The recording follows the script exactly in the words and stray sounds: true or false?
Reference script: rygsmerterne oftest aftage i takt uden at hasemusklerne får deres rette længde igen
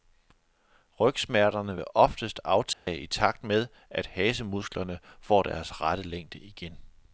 false